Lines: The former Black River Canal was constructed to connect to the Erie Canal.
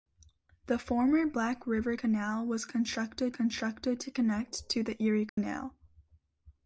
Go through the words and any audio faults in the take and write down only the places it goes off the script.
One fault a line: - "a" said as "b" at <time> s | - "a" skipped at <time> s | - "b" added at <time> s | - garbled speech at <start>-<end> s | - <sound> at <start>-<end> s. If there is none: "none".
- "constructed" added at 3.3 s
- dropout at 5.3-5.4 s